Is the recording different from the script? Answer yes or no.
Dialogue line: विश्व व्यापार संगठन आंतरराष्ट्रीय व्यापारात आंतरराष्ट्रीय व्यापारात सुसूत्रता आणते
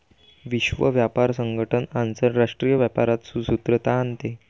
yes